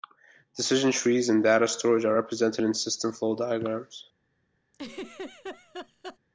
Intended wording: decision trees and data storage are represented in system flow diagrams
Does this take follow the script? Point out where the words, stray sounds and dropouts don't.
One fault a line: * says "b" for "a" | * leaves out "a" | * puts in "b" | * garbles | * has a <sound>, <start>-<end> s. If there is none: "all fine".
* has a laugh, 4.7-6.2 s